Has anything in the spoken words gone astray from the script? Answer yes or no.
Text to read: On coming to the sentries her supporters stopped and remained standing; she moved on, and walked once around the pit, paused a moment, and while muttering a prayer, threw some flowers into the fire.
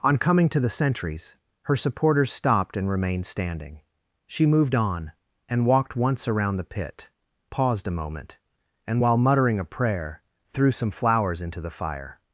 no